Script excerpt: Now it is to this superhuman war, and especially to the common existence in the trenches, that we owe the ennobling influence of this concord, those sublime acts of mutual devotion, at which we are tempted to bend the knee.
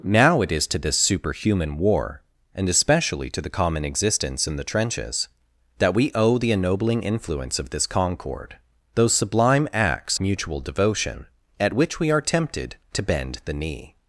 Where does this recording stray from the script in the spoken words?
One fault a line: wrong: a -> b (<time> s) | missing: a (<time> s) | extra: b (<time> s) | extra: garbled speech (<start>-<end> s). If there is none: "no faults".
missing: of (10.2 s)